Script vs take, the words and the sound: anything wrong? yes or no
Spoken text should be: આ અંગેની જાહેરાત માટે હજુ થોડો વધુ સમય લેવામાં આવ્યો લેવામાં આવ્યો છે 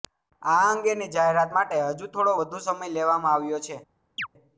yes